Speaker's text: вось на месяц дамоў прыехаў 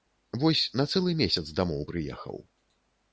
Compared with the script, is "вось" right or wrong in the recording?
right